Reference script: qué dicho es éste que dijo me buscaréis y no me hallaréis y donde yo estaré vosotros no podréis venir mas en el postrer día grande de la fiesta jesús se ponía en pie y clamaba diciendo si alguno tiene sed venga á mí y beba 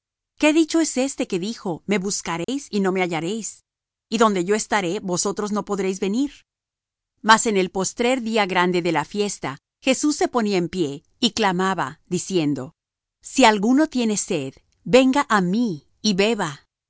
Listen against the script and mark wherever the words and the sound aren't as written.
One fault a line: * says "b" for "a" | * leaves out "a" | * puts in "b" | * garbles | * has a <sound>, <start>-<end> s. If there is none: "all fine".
* has a dropout, 2.4-2.5 s